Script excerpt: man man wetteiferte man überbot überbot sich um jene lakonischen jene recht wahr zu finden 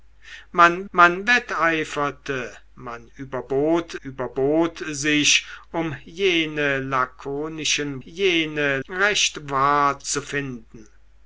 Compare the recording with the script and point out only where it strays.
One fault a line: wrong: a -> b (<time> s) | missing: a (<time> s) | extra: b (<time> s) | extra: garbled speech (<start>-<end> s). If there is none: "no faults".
no faults